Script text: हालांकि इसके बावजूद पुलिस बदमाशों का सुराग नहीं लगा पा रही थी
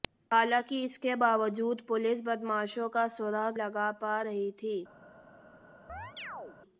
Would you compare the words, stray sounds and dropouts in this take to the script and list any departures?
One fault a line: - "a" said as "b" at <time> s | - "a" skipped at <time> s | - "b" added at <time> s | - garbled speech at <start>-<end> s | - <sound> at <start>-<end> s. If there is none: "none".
- "नहीं" skipped at 3.6 s
- chirp at 5.9-6.6 s